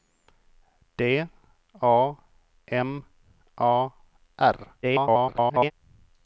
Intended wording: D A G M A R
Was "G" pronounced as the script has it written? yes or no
no